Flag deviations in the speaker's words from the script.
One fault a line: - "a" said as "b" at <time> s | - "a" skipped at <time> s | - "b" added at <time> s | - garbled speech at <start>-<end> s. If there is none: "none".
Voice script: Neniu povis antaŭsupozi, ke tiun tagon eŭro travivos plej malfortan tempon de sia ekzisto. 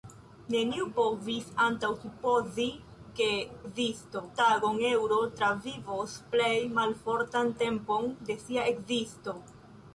- "tiun" said as "ekzisto" at 3.6 s